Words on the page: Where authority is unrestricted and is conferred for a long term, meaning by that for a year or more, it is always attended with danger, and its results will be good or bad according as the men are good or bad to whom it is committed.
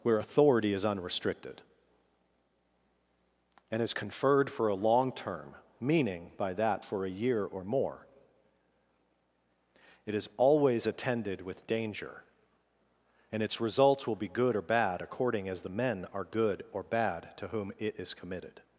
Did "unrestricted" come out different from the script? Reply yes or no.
no